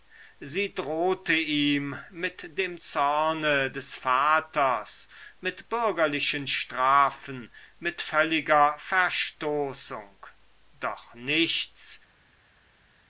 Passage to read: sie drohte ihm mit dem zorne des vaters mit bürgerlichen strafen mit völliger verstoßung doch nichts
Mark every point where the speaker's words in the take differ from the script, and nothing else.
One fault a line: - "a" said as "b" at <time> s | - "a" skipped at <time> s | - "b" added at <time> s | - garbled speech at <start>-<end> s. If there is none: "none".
none